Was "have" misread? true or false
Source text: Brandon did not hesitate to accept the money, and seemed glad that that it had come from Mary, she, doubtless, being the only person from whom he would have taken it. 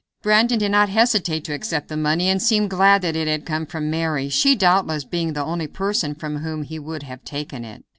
false